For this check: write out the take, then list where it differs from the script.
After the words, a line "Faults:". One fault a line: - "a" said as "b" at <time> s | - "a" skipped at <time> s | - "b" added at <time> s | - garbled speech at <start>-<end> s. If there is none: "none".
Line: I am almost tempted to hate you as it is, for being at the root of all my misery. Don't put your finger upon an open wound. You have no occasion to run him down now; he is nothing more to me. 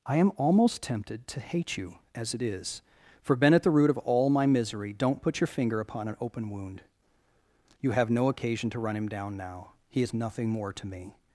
I am almost tempted to hate you as it is, for been at the root of all my misery. Don't put your finger upon an open wound. You have no occasion to run him down now; he is nothing more to me.
Faults:
- "being" said as "been" at 3.4 s